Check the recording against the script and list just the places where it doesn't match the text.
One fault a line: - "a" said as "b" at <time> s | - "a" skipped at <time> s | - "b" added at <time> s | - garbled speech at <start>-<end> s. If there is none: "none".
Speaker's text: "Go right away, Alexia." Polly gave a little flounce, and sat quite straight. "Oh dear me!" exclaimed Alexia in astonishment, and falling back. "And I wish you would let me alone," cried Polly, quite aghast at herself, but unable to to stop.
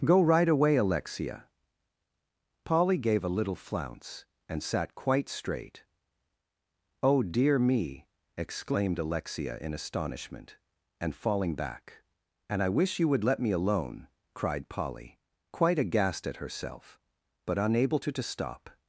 none